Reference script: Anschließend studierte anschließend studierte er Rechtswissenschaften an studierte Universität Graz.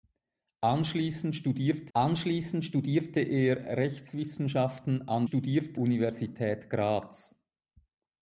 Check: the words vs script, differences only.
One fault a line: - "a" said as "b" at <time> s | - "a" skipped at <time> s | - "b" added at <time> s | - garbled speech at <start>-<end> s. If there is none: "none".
none